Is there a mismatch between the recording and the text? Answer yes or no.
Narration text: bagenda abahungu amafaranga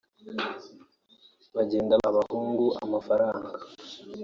no